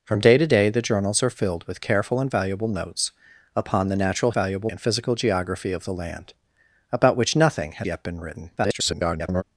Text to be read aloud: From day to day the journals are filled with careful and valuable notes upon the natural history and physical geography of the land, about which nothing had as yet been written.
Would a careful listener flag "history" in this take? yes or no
yes